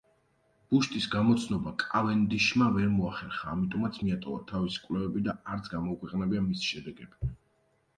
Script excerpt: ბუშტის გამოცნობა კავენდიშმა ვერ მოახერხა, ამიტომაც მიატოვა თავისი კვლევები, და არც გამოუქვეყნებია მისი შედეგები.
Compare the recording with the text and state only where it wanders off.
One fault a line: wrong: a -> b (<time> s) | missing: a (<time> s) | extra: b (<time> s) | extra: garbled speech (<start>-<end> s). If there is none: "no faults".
no faults